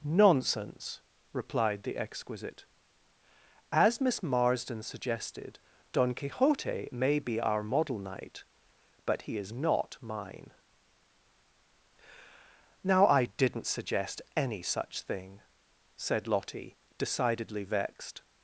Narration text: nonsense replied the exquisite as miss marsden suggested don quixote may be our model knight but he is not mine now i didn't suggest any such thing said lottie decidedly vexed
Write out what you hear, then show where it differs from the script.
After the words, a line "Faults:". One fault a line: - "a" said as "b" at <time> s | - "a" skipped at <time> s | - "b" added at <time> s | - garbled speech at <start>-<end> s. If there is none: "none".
nonsense replied the exquisite as miss marsden suggested don quixote may be our model knight but he is not mine now i didn't suggest any such thing said lottie decidedly vexed
Faults:
none